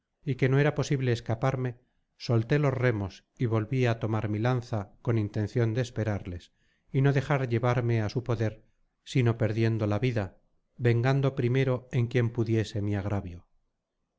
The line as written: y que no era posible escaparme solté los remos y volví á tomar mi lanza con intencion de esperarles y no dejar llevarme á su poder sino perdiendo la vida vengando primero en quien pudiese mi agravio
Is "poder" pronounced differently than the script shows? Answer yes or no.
no